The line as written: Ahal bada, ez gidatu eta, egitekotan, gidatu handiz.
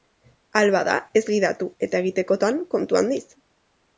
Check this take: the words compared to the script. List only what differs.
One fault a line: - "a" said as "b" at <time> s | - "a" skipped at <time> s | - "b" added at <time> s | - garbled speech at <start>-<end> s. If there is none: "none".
- "gidatu" said as "kontu" at 2.8 s